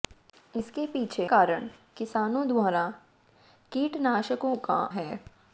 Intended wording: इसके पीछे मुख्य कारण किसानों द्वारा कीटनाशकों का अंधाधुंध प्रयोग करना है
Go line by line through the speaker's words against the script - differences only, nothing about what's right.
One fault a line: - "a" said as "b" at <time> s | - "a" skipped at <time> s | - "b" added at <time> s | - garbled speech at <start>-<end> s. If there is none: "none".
- "मुख्य" skipped at 1.3 s
- "अंधाधुंध प्रयोग करना" skipped at 4.8 s